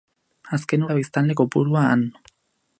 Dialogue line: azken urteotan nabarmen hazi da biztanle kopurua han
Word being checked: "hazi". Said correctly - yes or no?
no